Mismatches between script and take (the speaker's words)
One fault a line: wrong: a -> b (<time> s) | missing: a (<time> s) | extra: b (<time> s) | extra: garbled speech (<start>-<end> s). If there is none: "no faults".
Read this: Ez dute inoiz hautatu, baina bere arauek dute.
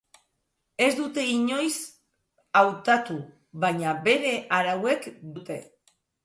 no faults